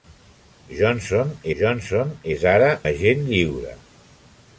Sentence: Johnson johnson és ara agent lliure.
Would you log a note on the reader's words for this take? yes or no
no